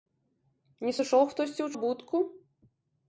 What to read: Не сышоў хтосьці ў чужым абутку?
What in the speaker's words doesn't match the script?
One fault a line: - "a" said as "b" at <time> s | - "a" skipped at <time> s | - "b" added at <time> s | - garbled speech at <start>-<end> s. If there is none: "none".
- "чужым" skipped at 1.7 s